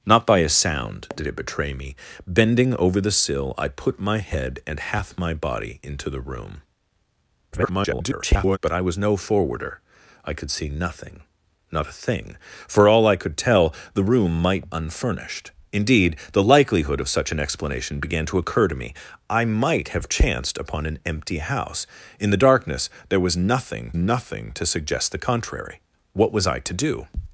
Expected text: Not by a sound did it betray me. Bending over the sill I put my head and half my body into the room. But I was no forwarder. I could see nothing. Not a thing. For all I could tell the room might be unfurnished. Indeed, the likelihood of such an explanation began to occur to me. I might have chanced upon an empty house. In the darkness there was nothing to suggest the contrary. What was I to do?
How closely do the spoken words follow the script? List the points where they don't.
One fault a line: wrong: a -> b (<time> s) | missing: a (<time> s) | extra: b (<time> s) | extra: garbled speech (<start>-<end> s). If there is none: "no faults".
extra: garbled speech (7.5-8.6 s)
missing: be (14.7 s)
extra: nothing (23.9 s)